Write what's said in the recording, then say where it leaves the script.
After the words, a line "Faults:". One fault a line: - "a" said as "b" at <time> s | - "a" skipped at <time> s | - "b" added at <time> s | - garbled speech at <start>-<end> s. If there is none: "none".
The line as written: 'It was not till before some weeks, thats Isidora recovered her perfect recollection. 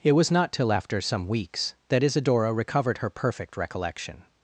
'It was not till after some weeks, that Isidora recovered her perfect recollection.
Faults:
- "before" said as "after" at 0.7 s
- "thats" said as "that" at 1.9 s